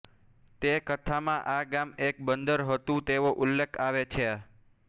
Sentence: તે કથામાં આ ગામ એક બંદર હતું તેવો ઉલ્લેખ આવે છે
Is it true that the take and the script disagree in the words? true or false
false